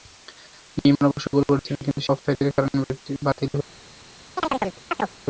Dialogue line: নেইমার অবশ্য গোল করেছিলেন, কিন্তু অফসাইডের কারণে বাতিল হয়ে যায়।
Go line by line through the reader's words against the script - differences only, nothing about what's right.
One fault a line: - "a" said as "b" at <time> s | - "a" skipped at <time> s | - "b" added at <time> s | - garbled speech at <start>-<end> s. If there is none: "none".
none